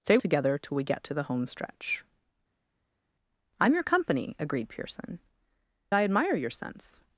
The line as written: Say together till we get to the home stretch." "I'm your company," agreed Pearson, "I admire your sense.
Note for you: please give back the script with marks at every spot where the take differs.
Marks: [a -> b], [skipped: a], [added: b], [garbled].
Say together till we get to the home stretch." "I'm your company," agreed Pearson, "I admire your sense.